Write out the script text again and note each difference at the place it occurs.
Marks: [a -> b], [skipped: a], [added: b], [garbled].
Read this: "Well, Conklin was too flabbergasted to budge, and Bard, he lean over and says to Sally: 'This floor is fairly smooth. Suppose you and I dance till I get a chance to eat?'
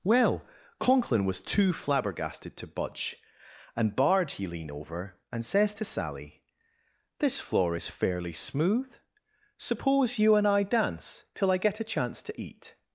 "Well, Conklin was too flabbergasted to budge, and Bard, he lean over and says to Sally: 'This floor is fairly smooth. Suppose you and I dance till I get a chance to eat?'